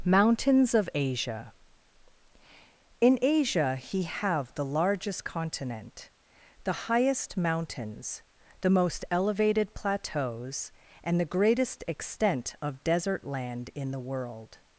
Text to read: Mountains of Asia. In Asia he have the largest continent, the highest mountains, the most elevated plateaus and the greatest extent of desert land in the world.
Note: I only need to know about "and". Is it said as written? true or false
true